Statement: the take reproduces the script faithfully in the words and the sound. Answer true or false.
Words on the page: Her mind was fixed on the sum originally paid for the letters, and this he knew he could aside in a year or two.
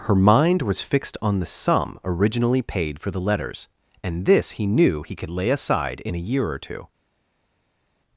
false